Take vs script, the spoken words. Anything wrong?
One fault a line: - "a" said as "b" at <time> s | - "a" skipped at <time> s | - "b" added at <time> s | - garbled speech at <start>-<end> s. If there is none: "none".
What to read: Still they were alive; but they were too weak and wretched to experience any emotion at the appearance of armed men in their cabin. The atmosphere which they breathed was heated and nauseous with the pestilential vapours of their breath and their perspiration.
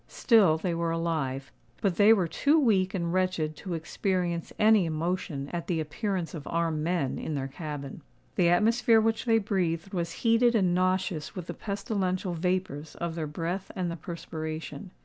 none